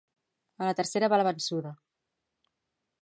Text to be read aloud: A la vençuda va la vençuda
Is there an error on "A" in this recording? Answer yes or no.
no